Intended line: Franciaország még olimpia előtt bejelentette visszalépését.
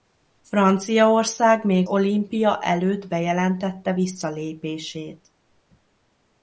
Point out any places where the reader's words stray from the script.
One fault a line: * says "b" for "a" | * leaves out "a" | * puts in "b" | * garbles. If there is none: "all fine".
all fine